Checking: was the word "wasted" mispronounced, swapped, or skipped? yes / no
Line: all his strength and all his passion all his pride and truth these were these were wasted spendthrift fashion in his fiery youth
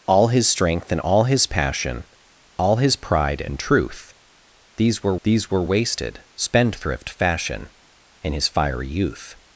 no